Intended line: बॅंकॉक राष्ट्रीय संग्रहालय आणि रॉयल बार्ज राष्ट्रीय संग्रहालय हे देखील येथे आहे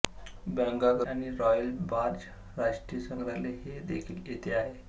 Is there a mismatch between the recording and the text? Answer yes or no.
yes